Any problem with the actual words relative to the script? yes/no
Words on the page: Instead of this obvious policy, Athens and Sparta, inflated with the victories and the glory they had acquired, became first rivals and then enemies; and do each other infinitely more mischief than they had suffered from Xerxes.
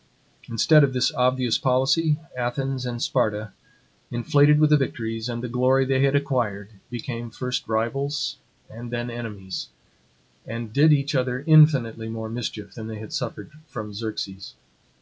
yes